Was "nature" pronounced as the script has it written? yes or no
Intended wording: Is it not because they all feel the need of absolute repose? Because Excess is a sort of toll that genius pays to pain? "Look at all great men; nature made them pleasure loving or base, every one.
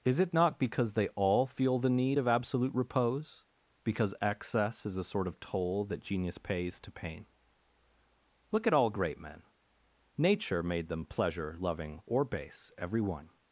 yes